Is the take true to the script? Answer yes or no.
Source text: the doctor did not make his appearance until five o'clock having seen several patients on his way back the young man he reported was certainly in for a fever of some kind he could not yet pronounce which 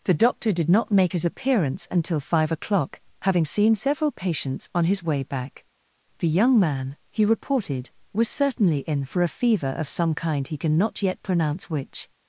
no